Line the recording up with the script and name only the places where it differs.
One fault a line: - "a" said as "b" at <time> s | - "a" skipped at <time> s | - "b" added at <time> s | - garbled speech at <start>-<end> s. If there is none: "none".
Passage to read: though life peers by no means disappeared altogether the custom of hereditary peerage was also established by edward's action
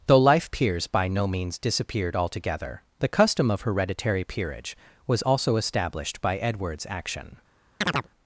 none